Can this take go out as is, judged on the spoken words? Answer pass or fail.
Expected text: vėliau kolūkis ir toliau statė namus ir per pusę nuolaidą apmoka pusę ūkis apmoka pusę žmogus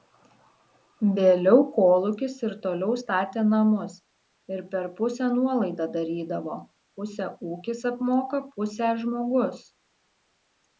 fail